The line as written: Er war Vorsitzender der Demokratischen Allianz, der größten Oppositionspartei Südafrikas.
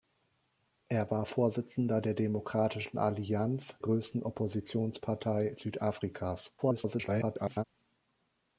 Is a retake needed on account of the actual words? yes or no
yes